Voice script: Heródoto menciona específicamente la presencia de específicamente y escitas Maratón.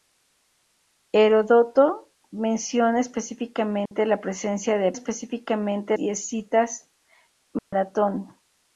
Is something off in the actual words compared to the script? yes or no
no